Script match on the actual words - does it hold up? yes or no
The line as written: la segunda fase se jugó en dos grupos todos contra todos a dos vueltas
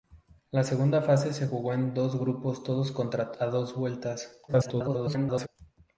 no